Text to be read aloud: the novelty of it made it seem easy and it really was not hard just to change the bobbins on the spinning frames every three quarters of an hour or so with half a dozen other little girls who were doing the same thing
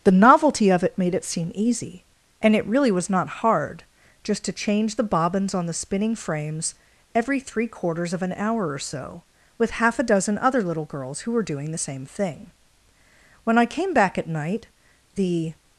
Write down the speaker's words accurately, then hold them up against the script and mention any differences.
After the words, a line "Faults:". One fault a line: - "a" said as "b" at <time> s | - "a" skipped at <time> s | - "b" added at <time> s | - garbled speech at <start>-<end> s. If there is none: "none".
the novelty of it made it seem easy and it really was not hard just to change the bobbins on the spinning frames every three quarters of an hour or so with half a dozen other little girls who were doing the same thing when i came back at night the
Faults:
- "when i came back at night the" added at 13.4 s